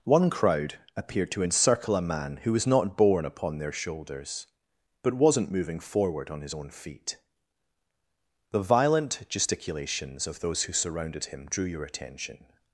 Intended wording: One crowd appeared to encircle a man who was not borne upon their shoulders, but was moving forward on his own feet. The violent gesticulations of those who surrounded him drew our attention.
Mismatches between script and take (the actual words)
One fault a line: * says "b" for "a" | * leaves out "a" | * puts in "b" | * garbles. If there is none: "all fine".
* says "wasn't" for "was"
* says "your" for "our"